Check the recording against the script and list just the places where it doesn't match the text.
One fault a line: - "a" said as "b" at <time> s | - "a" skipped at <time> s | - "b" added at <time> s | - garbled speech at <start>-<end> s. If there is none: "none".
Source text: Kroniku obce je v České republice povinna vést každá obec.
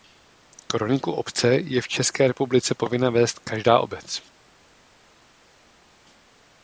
none